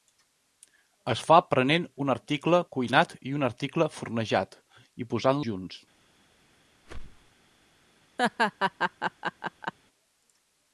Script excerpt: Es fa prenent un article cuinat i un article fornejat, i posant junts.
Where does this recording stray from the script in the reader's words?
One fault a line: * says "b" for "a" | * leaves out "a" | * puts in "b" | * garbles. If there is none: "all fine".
all fine